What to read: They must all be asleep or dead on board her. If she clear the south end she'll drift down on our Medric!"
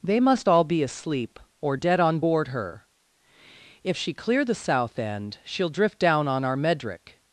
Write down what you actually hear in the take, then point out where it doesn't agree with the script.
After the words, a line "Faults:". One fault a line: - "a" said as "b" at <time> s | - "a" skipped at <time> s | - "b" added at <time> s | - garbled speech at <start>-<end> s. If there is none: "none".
They must all be asleep or dead on board her. If she clear the south end she'll drift down on our Medric!"
Faults:
none